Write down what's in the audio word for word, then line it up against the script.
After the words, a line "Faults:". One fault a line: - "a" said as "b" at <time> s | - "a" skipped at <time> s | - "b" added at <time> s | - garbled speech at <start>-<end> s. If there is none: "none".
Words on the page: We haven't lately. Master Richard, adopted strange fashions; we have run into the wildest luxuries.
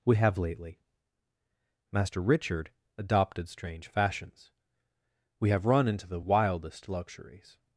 We have lately. Master Richard, adopted strange fashions; we have run into the wildest luxuries.
Faults:
- "haven't" said as "have" at 0.1 s